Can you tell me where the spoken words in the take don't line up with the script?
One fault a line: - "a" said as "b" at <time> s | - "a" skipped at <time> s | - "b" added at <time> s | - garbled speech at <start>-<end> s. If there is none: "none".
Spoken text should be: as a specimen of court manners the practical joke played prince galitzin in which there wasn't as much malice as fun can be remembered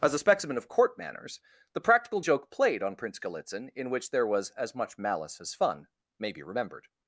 - "on" added at 2.8 s
- "wasn't" said as "was" at 4.3 s
- "can" said as "may" at 6.2 s